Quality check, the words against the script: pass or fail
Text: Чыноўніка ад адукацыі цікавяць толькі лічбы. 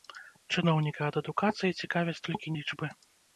pass